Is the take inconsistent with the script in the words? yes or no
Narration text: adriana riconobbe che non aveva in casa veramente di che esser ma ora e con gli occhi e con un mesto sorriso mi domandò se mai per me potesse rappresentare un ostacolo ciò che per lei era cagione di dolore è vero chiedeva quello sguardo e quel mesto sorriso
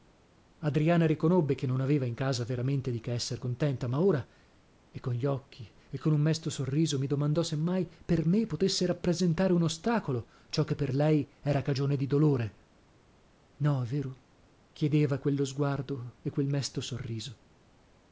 yes